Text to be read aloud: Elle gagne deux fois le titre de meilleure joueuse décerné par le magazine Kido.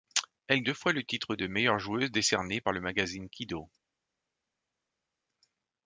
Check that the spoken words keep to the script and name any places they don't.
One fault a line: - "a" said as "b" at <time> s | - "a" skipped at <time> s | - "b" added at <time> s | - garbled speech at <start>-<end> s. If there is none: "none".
- "gagne" skipped at 0.6 s